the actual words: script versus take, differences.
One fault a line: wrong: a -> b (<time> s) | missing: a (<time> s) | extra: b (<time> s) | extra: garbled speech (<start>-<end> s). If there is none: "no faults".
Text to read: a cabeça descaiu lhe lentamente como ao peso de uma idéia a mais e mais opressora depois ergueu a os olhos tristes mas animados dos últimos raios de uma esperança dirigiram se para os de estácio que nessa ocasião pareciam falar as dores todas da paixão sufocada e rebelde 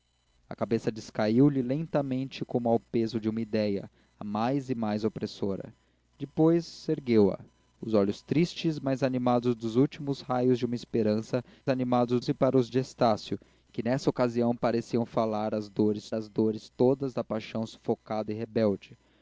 wrong: dirigiram -> animados (11.7 s)
extra: as dores (16.1 s)